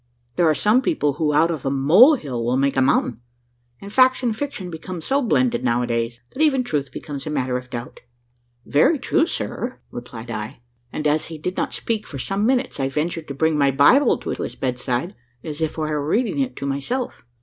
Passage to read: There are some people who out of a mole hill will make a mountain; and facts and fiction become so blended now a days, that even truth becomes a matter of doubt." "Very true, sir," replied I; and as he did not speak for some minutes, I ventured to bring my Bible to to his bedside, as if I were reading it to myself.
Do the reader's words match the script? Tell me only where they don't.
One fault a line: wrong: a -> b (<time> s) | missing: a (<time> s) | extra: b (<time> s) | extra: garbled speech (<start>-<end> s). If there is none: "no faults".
no faults